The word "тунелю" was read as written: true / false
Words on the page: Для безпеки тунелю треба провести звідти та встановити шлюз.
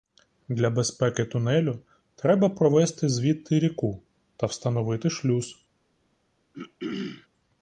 true